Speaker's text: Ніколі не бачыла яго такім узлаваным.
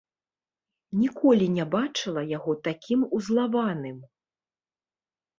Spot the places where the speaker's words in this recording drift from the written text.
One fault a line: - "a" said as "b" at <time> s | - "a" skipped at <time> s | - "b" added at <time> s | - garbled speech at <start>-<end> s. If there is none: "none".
none